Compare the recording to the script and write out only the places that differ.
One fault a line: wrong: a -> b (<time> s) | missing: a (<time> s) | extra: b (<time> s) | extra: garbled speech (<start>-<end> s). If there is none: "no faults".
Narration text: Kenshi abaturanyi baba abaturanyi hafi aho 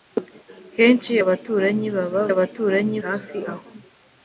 no faults